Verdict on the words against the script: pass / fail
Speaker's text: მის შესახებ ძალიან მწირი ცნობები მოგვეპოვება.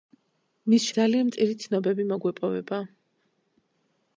fail